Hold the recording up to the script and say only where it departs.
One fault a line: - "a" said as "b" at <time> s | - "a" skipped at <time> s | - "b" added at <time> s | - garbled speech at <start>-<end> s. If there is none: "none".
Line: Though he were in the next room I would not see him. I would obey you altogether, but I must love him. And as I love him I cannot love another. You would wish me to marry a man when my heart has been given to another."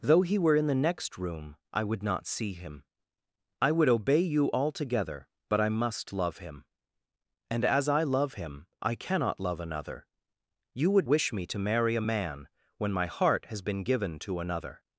none